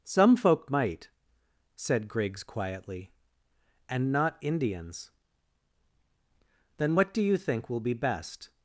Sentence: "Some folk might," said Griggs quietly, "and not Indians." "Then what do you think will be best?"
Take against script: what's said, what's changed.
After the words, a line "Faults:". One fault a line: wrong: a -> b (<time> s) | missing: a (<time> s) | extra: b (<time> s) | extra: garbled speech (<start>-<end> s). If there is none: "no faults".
"Some folk might," said Griggs quietly, "and not Indians." "Then what do you think will be best?"
Faults:
no faults